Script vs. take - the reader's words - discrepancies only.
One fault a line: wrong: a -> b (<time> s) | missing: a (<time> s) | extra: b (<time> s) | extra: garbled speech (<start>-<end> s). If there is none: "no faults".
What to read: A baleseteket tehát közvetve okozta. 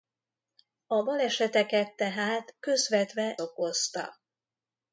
no faults